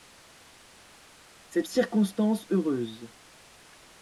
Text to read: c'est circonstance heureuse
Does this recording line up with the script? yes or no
yes